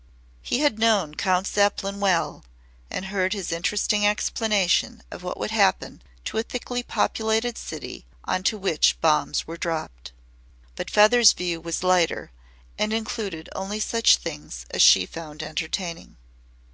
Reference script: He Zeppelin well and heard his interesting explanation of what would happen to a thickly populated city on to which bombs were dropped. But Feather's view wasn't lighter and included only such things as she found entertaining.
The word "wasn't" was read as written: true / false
false